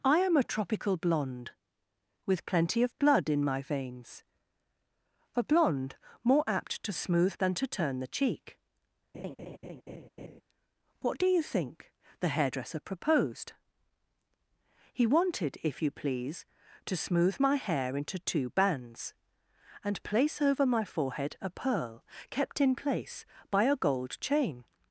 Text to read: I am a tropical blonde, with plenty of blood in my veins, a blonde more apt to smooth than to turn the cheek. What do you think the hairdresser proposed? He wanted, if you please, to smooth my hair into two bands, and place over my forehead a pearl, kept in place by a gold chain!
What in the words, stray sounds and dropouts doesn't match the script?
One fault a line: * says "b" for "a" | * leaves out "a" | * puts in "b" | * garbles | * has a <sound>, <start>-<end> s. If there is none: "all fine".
* has a laugh, 9.1-10.4 s